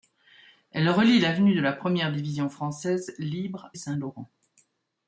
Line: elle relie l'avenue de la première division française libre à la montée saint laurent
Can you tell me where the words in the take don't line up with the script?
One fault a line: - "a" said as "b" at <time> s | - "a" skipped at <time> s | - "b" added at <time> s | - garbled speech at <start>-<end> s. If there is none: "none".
- "à la montée" skipped at 3.7 s